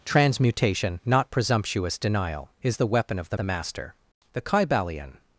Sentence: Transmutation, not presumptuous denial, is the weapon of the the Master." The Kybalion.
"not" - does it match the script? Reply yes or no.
yes